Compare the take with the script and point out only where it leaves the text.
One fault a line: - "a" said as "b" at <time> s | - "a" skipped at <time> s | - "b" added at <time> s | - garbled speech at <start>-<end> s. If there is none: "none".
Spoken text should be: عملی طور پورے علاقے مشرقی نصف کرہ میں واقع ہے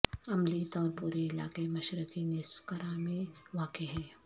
none